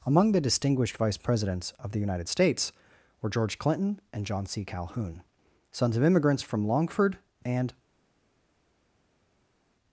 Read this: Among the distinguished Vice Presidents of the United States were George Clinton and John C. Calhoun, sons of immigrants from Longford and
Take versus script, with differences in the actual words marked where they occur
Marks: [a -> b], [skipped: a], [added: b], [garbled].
Among the distinguished Vice Presidents of the United States were George Clinton and John C. Calhoun, sons of immigrants from Longford and